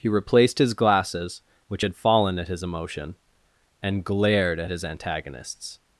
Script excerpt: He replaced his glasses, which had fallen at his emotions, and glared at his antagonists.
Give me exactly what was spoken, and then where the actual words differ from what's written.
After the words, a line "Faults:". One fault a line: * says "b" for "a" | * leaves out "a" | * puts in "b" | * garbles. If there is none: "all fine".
He replaced his glasses, which had fallen at his emotion, and glared at his antagonists.
Faults:
* says "emotion" for "emotions"